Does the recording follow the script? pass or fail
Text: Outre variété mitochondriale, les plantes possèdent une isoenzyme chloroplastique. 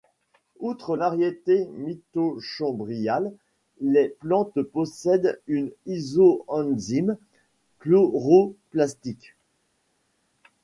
pass